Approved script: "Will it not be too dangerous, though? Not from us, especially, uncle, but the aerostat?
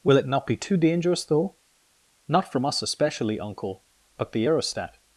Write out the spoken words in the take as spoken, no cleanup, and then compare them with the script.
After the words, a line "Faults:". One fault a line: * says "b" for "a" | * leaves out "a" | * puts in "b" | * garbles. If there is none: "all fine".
"Will it not be too dangerous, though? Not from us, especially, uncle, but the aerostat?
Faults:
all fine